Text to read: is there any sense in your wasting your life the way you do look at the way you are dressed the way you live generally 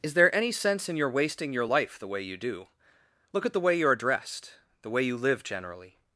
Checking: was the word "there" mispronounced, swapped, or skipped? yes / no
no